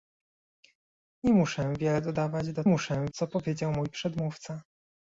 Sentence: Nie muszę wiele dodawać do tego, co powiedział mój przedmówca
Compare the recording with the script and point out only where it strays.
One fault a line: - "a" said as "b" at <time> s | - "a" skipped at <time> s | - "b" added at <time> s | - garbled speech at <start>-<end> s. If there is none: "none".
- "tego" said as "muszę" at 2.7 s